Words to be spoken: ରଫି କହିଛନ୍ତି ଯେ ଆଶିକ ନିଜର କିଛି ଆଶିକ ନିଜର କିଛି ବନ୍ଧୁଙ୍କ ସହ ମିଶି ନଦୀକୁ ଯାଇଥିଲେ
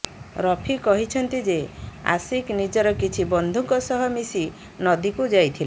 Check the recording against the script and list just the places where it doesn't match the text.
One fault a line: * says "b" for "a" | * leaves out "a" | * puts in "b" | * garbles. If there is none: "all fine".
* leaves out "ଆଶିକ ନିଜର କିଛି"